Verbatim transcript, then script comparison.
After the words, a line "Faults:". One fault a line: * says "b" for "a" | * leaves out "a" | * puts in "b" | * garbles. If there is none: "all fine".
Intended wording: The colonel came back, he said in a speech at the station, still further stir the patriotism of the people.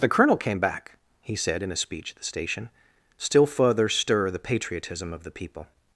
The colonel came back, he said in a speech at the station, still further stir the patriotism of the people.
Faults:
all fine